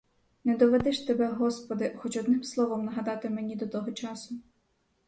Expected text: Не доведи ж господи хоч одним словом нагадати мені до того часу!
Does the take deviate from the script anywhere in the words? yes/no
yes